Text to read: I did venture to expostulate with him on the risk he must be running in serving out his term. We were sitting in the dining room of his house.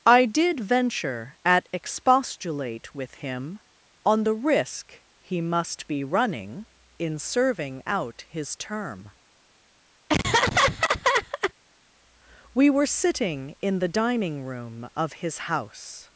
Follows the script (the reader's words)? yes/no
no